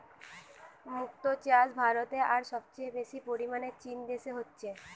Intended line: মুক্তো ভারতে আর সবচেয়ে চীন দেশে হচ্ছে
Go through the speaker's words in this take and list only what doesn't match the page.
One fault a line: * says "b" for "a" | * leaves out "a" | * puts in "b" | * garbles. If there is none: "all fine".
* puts in "চাষ"
* puts in "বেশি পরিমাণে"